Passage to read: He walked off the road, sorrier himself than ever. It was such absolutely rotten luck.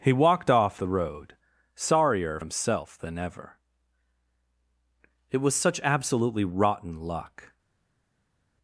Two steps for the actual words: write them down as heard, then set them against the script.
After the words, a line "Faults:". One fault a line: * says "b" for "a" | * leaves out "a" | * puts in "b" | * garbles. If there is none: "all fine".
He walked off the road, sorrier himself than ever. It was such absolutely rotten luck.
Faults:
all fine